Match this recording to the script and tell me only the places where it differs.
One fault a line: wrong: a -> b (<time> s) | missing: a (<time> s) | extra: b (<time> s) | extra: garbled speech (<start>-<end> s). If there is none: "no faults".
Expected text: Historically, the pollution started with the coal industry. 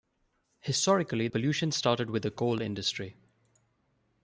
missing: the (1.3 s)